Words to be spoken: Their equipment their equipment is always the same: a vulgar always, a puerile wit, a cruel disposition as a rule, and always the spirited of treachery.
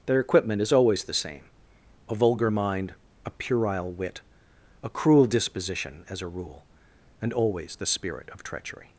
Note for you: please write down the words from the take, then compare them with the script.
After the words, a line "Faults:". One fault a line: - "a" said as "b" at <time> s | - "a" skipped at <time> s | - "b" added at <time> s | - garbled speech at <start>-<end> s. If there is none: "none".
Their equipment is always the same: a vulgar mind, a puerile wit, a cruel disposition as a rule, and always the spirit of treachery.
Faults:
- "their equipment" skipped at 0.6 s
- "always" said as "mind" at 2.5 s
- "spirited" said as "spirit" at 7.9 s